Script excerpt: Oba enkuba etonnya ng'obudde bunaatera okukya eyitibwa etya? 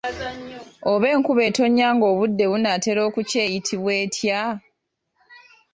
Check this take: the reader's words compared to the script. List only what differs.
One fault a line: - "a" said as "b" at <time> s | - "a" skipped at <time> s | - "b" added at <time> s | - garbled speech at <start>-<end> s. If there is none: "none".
none